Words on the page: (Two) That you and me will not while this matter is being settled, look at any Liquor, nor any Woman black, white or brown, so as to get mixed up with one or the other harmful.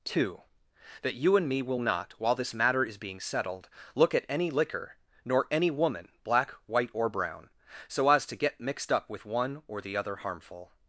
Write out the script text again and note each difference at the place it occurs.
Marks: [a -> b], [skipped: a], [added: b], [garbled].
(Two) That you and me will not while this matter is being settled, look at any Liquor, nor any Woman black, white or brown, so as to get mixed up with one or the other harmful.